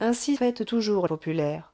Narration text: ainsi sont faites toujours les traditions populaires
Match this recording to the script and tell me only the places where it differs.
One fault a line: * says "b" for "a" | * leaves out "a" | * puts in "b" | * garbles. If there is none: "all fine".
* leaves out "sont"
* leaves out "les traditions"